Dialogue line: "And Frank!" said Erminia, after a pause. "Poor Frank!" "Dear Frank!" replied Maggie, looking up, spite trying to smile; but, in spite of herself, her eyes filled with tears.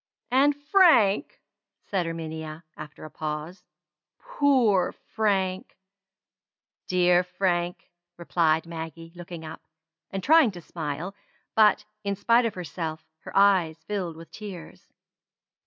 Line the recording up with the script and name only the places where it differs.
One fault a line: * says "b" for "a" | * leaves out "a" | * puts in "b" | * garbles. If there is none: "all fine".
* says "and" for "spite"